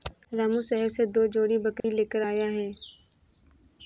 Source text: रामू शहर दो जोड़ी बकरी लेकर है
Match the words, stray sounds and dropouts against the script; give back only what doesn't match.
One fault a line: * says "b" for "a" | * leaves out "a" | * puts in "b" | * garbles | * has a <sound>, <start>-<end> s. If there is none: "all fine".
* puts in "से"
* has a dropout, 1.8-1.8 s
* puts in "आया"